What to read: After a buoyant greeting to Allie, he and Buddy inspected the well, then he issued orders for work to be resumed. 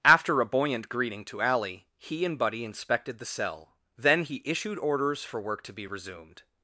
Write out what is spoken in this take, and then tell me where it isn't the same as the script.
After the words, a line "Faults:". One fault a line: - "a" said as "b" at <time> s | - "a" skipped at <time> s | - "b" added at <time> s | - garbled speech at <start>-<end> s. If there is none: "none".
After a buoyant greeting to Allie, he and Buddy inspected the cell, then he issued orders for work to be resumed.
Faults:
- "well" said as "cell" at 3.2 s